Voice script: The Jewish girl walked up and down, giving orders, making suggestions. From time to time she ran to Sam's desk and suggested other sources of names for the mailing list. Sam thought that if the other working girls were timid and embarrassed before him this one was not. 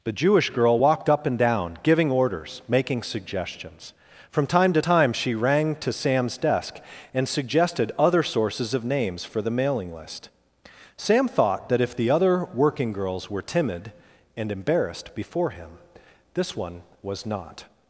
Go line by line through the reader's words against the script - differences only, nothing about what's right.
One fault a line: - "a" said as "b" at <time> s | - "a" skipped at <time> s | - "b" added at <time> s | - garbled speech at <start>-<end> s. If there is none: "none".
- "ran" said as "rang" at 5.3 s